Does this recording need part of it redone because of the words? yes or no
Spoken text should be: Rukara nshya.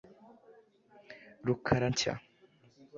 no